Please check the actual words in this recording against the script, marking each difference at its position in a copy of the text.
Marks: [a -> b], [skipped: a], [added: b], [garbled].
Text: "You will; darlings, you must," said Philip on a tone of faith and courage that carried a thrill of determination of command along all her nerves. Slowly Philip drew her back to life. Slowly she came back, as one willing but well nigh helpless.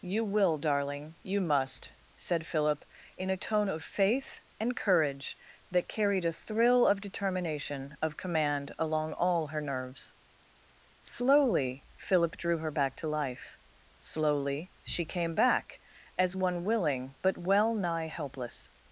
"You will; [darlings, -> darling] you must," said Philip [on -> in] a tone of faith and courage that carried a thrill of determination of command along all her nerves. Slowly Philip drew her back to life. Slowly she came back, as one willing but well nigh helpless.